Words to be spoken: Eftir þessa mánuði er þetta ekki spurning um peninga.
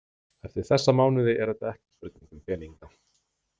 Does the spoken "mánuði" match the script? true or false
true